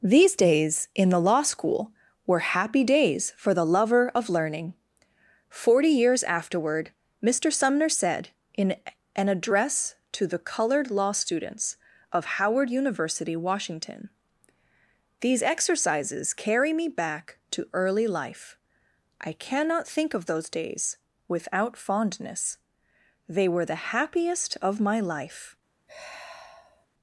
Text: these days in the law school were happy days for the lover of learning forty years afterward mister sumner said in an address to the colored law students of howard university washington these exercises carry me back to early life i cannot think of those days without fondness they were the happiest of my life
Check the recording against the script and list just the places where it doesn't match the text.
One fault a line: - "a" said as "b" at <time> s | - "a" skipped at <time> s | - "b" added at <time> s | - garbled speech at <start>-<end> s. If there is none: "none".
none